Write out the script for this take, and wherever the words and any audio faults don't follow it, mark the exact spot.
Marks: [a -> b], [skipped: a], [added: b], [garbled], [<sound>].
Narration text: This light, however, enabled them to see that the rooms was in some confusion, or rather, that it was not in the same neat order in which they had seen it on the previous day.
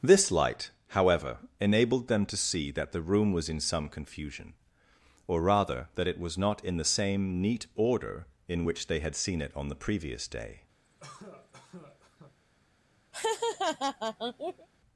This light, however, enabled them to see that the [rooms -> room] was in some confusion, or rather, that it was not in the same neat order in which they had seen it on the previous day. [cough] [laugh]